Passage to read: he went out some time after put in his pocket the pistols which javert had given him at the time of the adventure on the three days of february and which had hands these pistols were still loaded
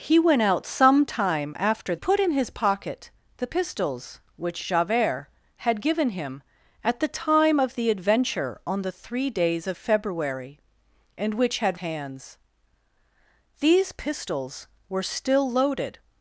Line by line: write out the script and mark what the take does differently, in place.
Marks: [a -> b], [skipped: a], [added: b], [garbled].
he went out some time after put in his pocket the pistols which javert had given him at the time of the adventure on the three days of february and which had hands these pistols were still loaded